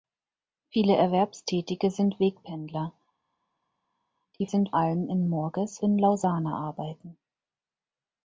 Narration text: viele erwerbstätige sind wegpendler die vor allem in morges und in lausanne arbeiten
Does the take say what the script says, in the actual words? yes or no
no